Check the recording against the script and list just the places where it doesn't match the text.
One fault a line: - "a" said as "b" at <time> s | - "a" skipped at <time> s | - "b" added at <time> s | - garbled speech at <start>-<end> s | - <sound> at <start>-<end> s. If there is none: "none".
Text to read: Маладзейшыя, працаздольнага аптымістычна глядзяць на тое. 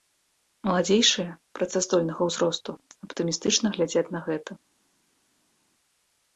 - "ўзросту" added at 2.3 s
- "тое" said as "гэта" at 4.3 s